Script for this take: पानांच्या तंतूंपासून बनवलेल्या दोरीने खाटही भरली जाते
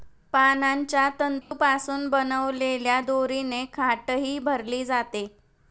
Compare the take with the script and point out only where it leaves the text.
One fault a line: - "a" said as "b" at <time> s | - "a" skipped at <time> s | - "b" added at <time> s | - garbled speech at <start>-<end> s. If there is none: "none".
none